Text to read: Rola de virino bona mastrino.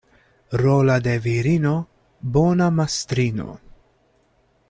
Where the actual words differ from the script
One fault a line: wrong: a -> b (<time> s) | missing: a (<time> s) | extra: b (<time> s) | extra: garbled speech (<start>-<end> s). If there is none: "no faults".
no faults